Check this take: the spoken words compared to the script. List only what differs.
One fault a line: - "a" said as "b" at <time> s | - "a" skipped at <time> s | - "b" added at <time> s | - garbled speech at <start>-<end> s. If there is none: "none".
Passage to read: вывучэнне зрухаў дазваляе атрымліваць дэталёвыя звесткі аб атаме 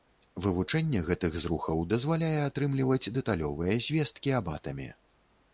- "гэтых" added at 1.1 s